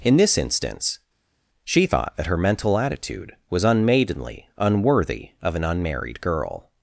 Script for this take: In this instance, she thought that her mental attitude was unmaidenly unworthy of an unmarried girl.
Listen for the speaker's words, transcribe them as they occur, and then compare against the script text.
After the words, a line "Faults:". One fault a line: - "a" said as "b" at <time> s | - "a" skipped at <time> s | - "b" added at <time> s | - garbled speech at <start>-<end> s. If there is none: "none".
In this instance, she thought that her mental attitude was unmaidenly unworthy of an unmarried girl.
Faults:
none